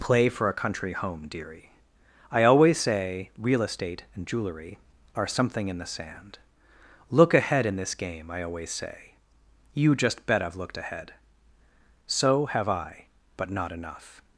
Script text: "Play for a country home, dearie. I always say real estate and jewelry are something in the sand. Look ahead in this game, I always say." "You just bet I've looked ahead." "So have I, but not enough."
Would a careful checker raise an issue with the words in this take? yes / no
no